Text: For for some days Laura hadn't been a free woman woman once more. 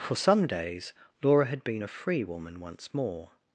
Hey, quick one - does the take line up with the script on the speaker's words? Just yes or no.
no